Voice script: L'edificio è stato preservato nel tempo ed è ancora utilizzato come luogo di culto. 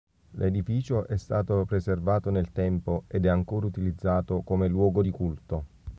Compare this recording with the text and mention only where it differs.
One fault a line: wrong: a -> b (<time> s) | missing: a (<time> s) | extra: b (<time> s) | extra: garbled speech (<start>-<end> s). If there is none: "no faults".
no faults